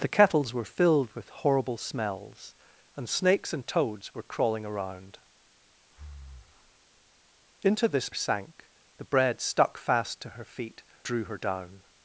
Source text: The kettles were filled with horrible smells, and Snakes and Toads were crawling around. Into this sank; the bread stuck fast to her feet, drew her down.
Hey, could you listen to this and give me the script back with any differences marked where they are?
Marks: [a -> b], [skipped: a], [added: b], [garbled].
The kettles were filled with horrible smells, and Snakes and Toads were crawling around. Into this sank; the bread stuck fast to her feet, drew her down.